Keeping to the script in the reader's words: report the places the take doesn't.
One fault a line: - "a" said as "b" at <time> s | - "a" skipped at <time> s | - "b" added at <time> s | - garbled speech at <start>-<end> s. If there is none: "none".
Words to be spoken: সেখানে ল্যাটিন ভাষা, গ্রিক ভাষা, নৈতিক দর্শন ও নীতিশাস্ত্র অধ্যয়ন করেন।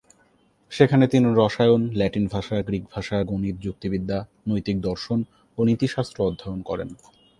- "তিনি রসায়ন" added at 1.1 s
- "গণিত যুক্তিবিদ্যা" added at 3.2 s